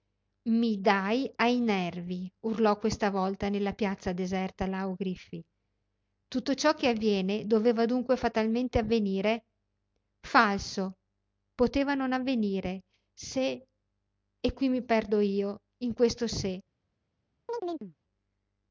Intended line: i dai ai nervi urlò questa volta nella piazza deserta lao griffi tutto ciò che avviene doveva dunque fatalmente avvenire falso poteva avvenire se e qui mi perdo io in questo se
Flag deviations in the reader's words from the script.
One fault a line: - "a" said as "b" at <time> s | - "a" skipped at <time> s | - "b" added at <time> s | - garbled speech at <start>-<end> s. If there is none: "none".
- "non" added at 11.9 s